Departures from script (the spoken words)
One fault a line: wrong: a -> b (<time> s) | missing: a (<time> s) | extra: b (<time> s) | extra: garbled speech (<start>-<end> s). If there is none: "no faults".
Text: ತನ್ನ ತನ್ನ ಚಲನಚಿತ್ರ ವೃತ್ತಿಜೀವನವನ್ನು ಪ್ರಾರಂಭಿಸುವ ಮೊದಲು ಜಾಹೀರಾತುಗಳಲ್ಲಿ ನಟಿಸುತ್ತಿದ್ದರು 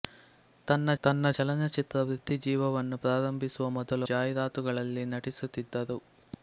no faults